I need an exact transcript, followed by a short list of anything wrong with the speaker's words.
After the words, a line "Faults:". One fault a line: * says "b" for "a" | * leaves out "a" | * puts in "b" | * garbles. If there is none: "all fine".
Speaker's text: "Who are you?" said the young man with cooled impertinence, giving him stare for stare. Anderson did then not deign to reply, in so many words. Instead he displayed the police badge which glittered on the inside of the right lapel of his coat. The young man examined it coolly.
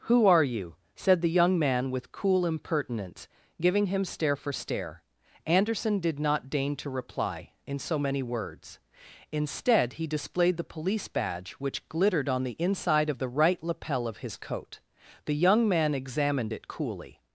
"Who are you?" said the young man with cool impertinence, giving him stare for stare. Anderson did not deign to reply, in so many words. Instead he displayed the police badge which glittered on the inside of the right lapel of his coat. The young man examined it coolly.
Faults:
* says "cool" for "cooled"
* leaves out "then"